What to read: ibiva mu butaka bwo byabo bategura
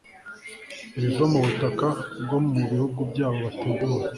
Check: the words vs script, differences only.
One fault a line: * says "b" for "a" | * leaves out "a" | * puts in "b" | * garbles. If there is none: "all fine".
* puts in "mu bihugu"